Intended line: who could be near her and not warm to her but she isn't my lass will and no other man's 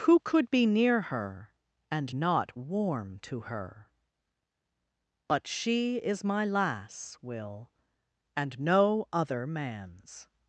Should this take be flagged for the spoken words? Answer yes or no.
yes